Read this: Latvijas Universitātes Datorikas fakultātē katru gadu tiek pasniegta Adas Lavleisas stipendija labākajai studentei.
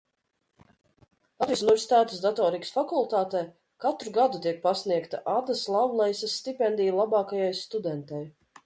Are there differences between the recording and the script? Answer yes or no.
no